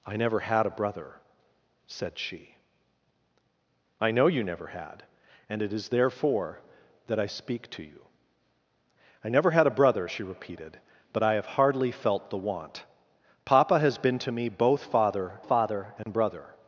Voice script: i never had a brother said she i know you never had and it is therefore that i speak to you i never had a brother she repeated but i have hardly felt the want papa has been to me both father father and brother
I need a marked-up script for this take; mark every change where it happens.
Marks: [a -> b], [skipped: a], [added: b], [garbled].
i never had a brother said she i know you never had and it is therefore that i speak to you i never had a brother she repeated but i have hardly felt the want papa has been to me both father father and brother